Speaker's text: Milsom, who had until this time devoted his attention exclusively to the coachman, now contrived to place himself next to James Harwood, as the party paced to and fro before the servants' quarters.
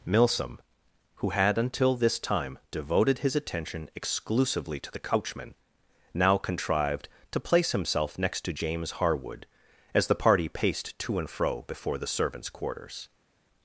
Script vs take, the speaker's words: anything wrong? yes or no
no